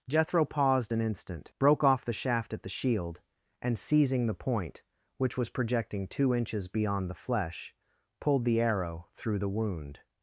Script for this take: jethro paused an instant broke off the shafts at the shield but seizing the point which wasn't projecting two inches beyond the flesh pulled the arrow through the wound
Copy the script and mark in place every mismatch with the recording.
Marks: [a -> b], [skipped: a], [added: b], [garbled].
jethro paused an instant broke off the [shafts -> shaft] at the shield [but -> and] seizing the point which [wasn't -> was] projecting two inches beyond the flesh pulled the arrow through the wound